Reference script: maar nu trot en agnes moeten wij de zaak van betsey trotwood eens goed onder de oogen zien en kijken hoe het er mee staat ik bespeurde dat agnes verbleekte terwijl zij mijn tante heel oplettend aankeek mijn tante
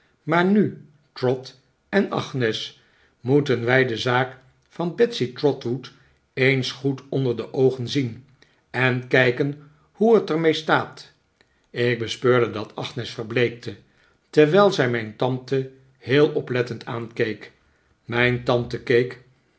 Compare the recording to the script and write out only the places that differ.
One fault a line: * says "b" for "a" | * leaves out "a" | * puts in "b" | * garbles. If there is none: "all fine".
all fine